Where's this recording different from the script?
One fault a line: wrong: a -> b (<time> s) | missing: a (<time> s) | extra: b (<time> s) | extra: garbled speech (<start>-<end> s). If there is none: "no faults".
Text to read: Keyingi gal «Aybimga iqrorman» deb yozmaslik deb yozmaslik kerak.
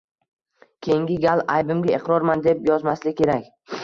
missing: deb yozmaslik (3.2 s)